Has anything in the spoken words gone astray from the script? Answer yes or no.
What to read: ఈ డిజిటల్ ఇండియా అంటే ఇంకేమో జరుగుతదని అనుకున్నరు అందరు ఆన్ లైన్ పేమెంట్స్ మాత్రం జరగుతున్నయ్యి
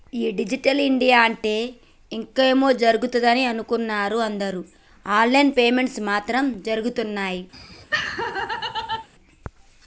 no